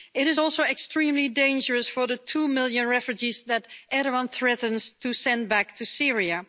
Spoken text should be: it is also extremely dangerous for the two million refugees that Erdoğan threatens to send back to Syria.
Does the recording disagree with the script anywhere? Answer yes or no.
no